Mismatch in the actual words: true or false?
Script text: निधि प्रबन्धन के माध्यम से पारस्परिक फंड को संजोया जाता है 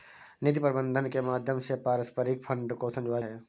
true